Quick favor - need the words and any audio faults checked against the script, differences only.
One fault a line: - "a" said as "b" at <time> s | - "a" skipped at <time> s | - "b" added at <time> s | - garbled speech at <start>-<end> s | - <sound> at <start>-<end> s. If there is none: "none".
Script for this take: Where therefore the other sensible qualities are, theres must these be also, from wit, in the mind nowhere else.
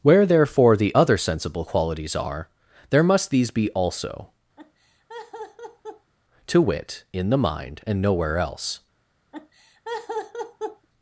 - "theres" said as "there" at 2.9 s
- laugh at 4.6-6.1 s
- "from" said as "to" at 6.5 s
- "and" added at 7.9 s
- laugh at 9.3-10.9 s